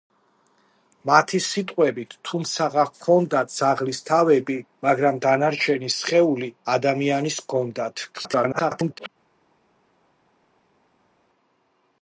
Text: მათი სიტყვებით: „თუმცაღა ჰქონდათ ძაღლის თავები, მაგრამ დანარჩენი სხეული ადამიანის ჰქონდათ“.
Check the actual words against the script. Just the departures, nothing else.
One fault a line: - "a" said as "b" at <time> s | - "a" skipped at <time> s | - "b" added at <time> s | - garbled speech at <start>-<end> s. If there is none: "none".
- garbled speech at 8.1-9.1 s